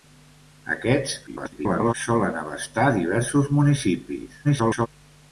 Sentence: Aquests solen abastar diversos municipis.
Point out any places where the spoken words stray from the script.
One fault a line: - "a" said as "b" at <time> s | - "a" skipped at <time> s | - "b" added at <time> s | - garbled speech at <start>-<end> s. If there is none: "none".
- garbled speech at 1.3-1.9 s
- garbled speech at 4.4-4.9 s